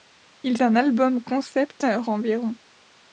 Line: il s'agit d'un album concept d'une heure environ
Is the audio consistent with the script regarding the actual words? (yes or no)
no